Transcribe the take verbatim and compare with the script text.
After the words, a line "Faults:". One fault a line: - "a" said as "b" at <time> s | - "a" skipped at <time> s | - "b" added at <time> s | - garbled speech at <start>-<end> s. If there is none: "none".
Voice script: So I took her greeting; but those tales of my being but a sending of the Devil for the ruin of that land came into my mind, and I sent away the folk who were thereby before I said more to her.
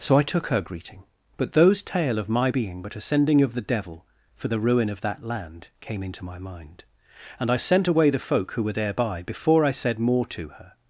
So I took her greeting; but those tale of my being but a sending of the Devil for the ruin of that land came into my mind, and I sent away the folk who were thereby before I said more to her.
Faults:
- "tales" said as "tale" at 1.8 s